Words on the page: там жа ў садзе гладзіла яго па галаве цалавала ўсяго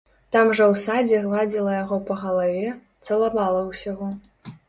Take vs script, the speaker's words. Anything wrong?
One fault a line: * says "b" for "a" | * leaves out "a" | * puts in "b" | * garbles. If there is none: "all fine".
all fine